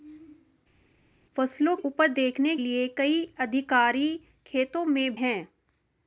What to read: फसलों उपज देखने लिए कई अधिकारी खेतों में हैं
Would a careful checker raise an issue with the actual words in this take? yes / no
no